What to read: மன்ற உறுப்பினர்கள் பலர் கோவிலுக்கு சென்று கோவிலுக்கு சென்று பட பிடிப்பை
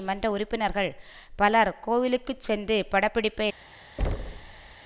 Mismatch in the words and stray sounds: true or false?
true